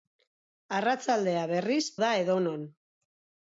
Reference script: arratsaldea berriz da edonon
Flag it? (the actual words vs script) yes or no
no